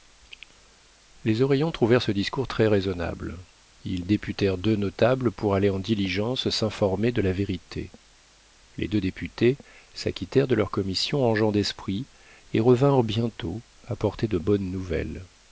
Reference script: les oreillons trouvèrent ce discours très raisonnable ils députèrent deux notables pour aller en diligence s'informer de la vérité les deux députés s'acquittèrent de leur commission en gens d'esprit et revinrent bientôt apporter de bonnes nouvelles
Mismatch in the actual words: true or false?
false